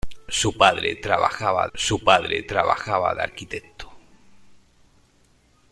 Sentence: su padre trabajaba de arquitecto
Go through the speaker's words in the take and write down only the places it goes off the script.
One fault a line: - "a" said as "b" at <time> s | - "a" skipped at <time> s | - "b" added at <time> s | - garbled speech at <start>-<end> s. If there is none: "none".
- "su padre trabajaba" added at 1.7 s